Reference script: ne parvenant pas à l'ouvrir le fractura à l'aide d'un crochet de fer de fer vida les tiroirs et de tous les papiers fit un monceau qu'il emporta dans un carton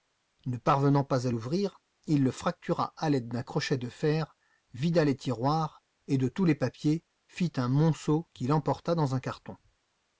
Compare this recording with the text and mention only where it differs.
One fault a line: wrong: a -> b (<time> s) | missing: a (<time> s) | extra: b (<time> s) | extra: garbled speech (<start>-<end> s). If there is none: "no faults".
extra: il (2.1 s)
missing: de fer (4.4 s)